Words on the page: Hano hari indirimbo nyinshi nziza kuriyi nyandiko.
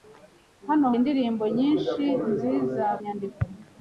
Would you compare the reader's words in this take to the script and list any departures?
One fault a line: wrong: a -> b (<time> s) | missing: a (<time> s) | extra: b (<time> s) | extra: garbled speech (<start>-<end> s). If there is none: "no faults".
missing: hari (0.9 s)
missing: kuriyi (2.9 s)